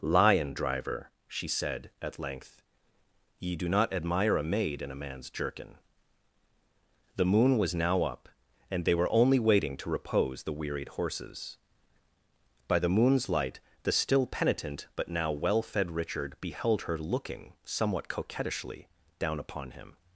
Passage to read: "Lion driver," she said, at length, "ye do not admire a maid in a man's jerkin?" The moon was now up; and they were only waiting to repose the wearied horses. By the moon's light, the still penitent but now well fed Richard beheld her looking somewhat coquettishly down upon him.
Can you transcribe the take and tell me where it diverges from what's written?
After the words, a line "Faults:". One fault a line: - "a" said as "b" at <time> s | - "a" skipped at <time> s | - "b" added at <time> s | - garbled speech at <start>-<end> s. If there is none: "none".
"Lion driver," she said, at length, "ye do not admire a maid in a man's jerkin?" The moon was now up; and they were only waiting to repose the wearied horses. By the moon's light, the still penitent but now well fed Richard beheld her looking somewhat coquettishly down upon him.
Faults:
none